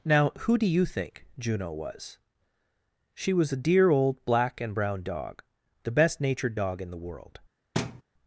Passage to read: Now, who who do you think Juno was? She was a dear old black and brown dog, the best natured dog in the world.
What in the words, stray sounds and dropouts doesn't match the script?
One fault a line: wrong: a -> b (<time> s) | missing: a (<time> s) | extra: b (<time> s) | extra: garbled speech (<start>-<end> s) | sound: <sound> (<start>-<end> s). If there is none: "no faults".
missing: who (0.6 s)
sound: thud (7.7-8.0 s)